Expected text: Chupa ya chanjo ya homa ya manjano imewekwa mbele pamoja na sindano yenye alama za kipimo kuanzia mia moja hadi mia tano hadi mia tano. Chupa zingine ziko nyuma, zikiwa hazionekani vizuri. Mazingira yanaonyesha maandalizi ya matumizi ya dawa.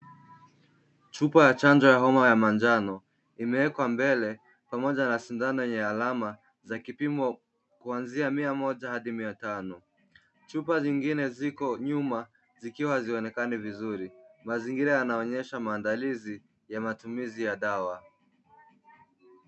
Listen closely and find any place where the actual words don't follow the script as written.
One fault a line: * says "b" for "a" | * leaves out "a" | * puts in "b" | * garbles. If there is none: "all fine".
* leaves out "hadi mia tano"